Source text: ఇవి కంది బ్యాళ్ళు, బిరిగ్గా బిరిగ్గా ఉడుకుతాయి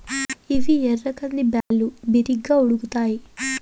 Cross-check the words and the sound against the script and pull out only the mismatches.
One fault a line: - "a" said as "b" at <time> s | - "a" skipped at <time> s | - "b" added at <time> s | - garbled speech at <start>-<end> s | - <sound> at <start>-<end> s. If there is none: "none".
- "ఎర్ర" added at 0.9 s
- dropout at 1.6-1.7 s
- "బిరిగ్గా" skipped at 2.6 s